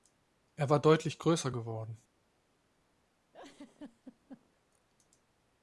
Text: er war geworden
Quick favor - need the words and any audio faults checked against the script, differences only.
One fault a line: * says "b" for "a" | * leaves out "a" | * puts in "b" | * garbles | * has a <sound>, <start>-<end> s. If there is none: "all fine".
* puts in "deutlich größer"
* has a laugh, 3.3-4.6 s